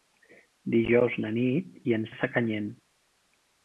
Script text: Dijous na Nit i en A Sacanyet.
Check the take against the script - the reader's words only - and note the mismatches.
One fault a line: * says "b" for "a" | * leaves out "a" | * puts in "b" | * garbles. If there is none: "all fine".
all fine